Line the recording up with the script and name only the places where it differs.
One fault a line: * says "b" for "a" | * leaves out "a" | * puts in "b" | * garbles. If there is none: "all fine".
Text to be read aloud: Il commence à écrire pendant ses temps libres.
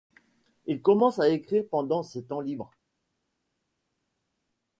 all fine